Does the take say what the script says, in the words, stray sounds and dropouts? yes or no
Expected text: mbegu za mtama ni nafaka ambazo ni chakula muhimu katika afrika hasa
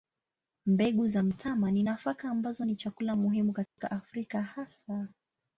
no